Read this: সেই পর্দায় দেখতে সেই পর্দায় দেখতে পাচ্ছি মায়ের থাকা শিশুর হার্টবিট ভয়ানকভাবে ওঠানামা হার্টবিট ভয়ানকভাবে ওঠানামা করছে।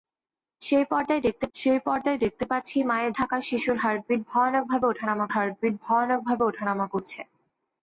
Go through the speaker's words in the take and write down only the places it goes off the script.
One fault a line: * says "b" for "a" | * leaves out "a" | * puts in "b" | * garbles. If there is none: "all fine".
all fine